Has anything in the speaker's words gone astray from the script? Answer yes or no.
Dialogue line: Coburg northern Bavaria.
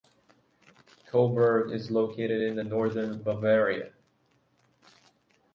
yes